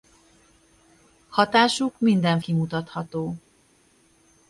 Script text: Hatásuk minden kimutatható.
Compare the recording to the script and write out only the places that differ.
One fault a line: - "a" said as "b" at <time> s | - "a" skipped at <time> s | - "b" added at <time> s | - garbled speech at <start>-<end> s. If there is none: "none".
none